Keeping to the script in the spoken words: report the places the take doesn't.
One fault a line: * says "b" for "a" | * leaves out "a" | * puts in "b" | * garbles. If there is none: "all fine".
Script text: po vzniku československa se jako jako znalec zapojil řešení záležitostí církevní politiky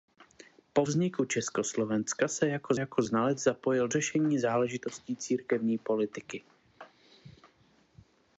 all fine